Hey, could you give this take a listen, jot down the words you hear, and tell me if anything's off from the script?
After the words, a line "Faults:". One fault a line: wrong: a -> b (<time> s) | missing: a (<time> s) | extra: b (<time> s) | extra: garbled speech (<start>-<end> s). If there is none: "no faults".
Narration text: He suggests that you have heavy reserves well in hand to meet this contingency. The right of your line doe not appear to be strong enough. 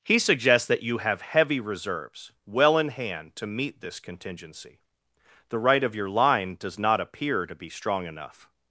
He suggests that you have heavy reserves well in hand to meet this contingency. The right of your line does not appear to be strong enough.
Faults:
wrong: doe -> does (6.6 s)